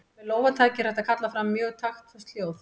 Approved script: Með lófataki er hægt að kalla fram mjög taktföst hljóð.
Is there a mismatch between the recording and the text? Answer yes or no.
no